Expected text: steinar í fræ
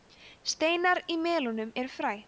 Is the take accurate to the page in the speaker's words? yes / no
no